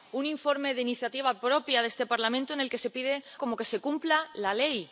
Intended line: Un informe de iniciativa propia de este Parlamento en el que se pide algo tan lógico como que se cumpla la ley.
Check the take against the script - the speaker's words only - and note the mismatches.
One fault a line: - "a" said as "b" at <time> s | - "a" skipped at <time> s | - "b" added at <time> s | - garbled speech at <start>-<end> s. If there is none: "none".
- "algo tan lógico" skipped at 3.1 s